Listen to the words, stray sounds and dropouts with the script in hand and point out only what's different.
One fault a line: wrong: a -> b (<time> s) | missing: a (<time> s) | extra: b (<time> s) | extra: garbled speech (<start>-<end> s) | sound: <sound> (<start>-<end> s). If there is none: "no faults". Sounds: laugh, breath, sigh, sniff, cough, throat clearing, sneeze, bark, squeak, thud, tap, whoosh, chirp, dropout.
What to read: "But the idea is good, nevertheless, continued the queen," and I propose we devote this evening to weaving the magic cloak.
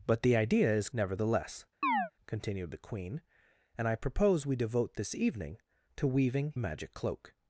missing: good (0.9 s)
sound: chirp (1.8-2.1 s)
missing: the (6.6 s)